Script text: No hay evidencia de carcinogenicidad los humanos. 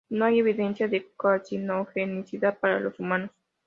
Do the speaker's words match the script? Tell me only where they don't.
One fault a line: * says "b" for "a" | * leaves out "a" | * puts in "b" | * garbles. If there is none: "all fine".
* puts in "para"